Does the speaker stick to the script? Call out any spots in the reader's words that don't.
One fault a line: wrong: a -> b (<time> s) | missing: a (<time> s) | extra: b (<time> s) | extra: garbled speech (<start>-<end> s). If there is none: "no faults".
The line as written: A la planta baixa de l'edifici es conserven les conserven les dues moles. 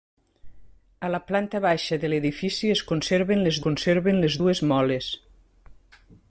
no faults